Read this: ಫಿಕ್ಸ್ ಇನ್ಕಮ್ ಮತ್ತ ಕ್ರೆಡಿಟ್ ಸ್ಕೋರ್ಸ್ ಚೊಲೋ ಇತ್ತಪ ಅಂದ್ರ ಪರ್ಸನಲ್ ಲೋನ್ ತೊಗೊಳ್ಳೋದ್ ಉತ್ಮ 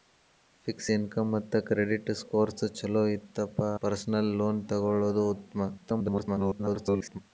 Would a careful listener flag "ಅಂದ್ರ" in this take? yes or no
yes